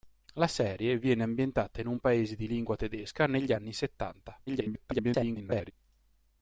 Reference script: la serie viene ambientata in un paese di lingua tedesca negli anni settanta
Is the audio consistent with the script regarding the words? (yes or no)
no